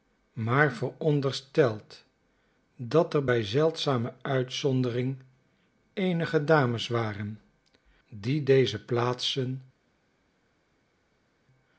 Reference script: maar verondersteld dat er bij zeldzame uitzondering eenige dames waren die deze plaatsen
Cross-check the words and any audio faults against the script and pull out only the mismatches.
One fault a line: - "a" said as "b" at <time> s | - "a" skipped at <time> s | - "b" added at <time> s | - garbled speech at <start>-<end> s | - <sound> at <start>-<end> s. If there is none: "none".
none